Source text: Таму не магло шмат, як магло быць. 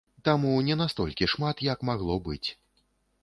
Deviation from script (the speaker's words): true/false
true